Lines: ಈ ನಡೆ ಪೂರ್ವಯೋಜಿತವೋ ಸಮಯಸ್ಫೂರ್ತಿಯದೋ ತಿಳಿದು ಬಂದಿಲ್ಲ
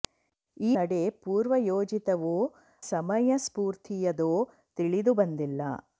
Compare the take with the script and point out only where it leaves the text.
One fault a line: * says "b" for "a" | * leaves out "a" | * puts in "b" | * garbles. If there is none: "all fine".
all fine